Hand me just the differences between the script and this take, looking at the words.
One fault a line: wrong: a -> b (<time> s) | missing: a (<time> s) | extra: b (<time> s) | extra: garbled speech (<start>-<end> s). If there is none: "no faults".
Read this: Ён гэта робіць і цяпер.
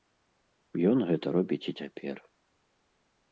no faults